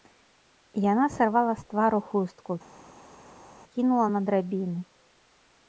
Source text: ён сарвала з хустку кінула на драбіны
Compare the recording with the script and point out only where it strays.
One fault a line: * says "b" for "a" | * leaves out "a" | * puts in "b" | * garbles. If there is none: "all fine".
* says "яна" for "ён"
* puts in "твару"